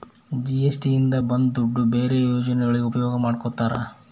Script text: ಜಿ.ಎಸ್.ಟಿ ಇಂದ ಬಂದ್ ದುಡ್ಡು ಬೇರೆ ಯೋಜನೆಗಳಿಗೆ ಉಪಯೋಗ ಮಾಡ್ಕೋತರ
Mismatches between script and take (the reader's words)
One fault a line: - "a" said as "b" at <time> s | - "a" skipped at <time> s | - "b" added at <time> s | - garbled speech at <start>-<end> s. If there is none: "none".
none